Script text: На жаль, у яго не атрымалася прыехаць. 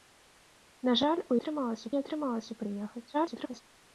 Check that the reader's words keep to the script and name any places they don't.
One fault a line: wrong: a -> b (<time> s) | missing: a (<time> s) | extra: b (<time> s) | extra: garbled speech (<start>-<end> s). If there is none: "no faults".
wrong: яго -> атрымалася (1.4 s)
extra: garbled speech (3.1-3.6 s)